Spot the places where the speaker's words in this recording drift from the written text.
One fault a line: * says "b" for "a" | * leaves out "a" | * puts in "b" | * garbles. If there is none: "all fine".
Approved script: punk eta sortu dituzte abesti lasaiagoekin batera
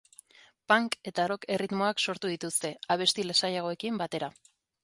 * puts in "rock erritmoak"